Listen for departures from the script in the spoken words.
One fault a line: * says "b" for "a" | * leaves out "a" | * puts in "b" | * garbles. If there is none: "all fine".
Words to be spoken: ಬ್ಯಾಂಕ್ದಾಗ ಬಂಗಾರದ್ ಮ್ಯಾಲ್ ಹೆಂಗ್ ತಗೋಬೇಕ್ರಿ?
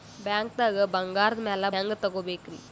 all fine